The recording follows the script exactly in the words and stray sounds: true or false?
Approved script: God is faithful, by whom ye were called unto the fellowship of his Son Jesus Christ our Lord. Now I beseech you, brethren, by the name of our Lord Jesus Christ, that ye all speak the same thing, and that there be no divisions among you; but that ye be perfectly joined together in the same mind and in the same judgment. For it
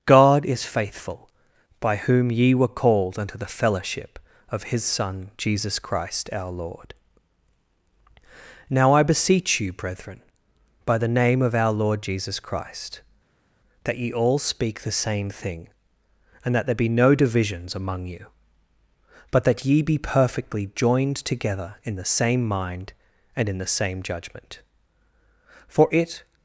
true